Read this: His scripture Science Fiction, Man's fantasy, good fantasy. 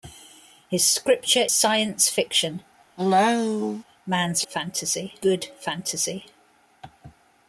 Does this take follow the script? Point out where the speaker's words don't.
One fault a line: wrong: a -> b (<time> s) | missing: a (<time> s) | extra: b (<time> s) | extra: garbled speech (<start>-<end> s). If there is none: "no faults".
no faults